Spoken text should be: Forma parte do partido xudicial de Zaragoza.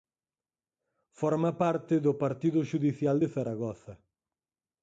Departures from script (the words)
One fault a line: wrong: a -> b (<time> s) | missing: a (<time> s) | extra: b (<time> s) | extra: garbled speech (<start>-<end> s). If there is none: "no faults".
no faults